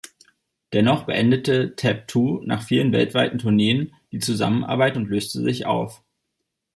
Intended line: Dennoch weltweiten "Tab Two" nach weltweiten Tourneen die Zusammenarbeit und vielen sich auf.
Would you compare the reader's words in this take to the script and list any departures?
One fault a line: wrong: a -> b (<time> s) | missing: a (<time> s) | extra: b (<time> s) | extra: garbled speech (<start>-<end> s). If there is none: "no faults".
wrong: weltweiten -> beendete (1.0 s)
extra: vielen (2.6 s)
wrong: vielen -> löste (5.1 s)